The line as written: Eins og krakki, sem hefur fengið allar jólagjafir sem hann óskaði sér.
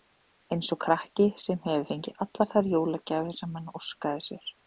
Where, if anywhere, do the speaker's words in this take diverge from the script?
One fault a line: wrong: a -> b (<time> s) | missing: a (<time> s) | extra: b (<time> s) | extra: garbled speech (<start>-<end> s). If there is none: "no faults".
extra: þær (2.5 s)